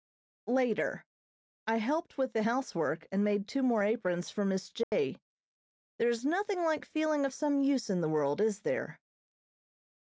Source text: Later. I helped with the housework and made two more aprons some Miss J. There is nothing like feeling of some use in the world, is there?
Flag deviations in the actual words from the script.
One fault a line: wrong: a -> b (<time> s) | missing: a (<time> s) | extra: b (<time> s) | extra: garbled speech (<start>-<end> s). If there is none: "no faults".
wrong: some -> for (4.3 s)